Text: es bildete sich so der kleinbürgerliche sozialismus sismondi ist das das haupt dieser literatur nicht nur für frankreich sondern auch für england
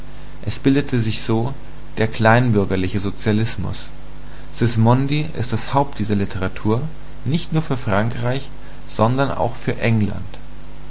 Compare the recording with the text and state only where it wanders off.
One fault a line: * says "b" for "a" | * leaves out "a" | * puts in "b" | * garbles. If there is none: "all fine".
* leaves out "das"